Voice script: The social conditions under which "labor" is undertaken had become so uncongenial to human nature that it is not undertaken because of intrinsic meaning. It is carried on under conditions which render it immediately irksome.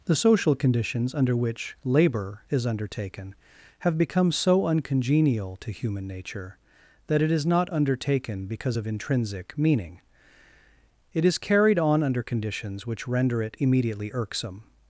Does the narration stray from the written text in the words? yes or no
yes